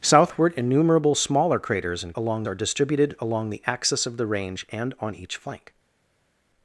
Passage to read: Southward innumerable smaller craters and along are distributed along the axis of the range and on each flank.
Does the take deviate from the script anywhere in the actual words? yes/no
no